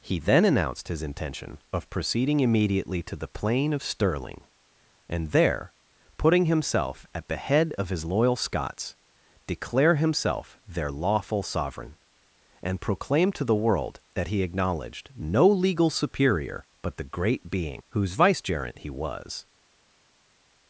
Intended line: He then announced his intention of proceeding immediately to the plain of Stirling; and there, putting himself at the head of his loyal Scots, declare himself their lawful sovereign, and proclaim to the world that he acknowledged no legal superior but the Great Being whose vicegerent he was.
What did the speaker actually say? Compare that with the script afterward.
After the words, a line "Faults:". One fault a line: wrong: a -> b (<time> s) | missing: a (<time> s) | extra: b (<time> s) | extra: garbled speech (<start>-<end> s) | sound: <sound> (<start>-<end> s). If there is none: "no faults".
He then announced his intention of proceeding immediately to the plain of Stirling; and there, putting himself at the head of his loyal Scots, declare himself their lawful sovereign, and proclaim to the world that he acknowledged no legal superior but the Great Being whose vicegerent he was.
Faults:
no faults